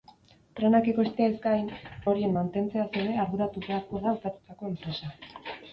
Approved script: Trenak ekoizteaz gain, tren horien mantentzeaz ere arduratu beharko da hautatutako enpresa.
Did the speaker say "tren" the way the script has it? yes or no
no